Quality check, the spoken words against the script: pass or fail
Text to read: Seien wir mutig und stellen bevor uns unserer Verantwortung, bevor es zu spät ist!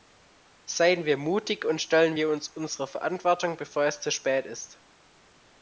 fail